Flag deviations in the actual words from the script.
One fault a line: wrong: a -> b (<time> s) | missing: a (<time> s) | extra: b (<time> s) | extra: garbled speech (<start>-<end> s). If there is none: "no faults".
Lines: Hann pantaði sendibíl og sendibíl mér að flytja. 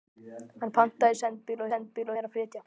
no faults